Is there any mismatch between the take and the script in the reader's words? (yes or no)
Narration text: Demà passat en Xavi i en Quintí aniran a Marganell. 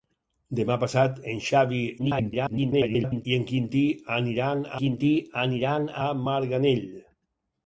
yes